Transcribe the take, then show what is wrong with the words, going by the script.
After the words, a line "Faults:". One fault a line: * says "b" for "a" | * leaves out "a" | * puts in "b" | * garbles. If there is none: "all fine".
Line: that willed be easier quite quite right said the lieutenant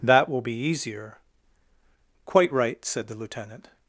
that will be easier quite right said the lieutenant
Faults:
* says "will" for "willed"
* leaves out "quite"